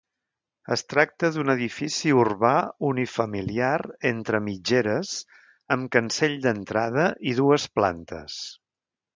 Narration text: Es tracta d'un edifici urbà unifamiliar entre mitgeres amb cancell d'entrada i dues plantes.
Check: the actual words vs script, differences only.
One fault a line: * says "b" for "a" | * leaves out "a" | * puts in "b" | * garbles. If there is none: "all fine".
all fine